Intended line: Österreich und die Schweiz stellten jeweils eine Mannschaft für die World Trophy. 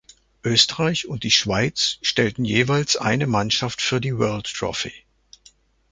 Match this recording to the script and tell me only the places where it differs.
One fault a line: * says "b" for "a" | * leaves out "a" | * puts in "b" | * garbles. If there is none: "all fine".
all fine